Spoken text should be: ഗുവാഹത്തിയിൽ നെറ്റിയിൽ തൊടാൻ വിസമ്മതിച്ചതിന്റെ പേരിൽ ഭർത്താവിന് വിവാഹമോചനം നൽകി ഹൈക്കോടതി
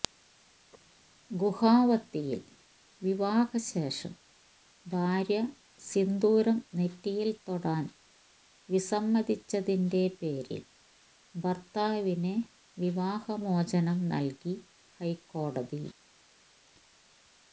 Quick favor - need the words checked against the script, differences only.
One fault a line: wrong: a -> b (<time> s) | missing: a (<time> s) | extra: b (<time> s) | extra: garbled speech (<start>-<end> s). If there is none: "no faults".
extra: വിവാഹശേഷം ഭാര്യ സിന്ദൂരം (3.0 s)